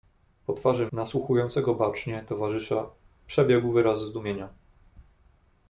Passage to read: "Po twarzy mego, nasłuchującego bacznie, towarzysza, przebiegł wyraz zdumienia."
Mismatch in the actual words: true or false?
true